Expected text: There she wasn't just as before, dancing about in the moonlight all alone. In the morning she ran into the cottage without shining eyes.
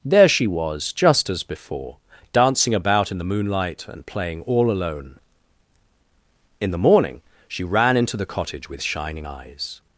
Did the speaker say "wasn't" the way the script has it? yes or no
no